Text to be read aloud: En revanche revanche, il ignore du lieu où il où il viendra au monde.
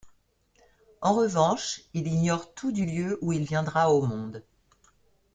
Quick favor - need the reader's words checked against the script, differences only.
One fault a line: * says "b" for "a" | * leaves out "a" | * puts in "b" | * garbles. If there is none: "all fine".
* leaves out "revanche"
* puts in "tout"
* leaves out "où il"